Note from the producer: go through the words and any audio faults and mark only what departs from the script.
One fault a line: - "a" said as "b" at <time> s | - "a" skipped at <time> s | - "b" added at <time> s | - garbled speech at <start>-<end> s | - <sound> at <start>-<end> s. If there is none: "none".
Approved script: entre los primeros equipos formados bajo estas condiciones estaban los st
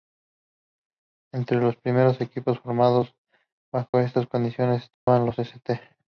- dropout at 3.9-3.9 s
- dropout at 4.9-5.1 s